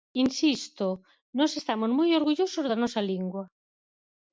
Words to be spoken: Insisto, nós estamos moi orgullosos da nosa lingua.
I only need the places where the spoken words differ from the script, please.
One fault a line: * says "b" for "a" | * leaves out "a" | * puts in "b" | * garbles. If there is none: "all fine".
all fine